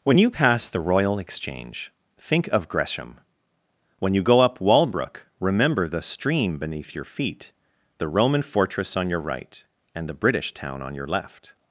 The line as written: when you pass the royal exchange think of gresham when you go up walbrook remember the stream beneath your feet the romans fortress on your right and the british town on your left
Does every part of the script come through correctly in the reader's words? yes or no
no